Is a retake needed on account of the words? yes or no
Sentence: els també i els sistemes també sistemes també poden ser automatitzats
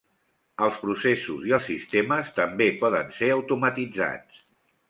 yes